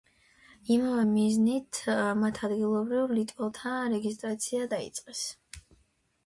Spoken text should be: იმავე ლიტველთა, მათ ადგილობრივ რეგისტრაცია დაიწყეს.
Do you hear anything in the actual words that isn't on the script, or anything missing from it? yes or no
yes